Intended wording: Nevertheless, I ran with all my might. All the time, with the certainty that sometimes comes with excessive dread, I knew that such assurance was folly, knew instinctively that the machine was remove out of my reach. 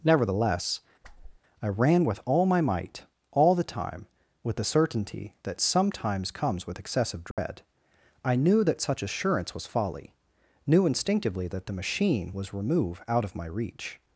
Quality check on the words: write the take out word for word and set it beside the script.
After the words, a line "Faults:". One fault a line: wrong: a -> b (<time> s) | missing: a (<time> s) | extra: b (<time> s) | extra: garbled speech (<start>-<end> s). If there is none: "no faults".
Nevertheless, I ran with all my might. All the time, with the certainty that sometimes comes with excessive dread, I knew that such assurance was folly, knew instinctively that the machine was remove out of my reach.
Faults:
no faults